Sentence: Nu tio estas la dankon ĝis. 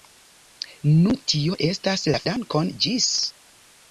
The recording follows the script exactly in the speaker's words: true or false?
true